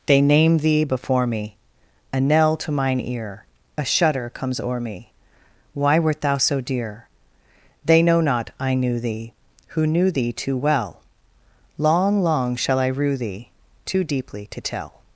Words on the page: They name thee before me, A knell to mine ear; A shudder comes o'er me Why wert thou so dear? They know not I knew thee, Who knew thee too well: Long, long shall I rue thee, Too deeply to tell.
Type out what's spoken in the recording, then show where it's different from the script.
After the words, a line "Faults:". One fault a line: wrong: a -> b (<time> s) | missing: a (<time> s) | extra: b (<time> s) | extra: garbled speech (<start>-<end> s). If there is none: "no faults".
They name thee before me, A knell to mine ear; A shudder comes o'er me Why wert thou so dear? They know not I knew thee, Who knew thee too well: Long, long shall I rue thee, Too deeply to tell.
Faults:
no faults